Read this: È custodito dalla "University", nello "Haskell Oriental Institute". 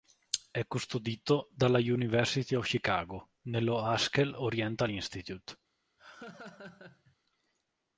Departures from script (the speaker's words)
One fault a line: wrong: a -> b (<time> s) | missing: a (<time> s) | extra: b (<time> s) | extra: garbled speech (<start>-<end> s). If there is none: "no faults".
extra: of Chicago (2.5 s)